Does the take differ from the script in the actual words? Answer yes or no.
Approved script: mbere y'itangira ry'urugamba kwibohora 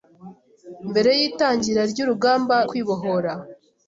no